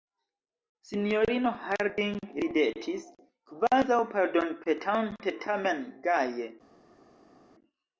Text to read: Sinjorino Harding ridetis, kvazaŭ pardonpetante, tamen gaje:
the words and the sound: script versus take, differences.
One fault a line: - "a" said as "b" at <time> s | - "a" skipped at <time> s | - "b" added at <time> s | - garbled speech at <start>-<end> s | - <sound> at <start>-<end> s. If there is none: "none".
none